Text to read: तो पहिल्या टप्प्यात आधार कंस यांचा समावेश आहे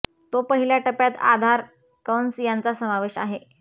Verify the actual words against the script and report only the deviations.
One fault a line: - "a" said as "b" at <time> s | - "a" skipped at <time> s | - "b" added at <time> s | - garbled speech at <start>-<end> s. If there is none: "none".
none